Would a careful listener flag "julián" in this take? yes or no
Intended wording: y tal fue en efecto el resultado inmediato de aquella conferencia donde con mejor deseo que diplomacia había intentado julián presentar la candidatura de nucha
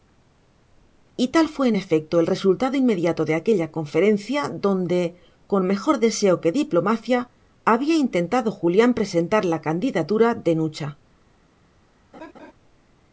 no